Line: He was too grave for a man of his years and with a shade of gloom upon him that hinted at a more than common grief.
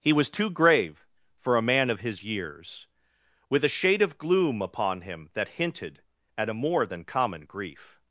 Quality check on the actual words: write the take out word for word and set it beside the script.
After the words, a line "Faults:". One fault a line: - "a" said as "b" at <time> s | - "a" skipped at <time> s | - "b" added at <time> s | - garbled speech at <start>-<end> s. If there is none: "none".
He was too grave for a man of his years with a shade of gloom upon him that hinted at a more than common grief.
Faults:
- "and" skipped at 2.9 s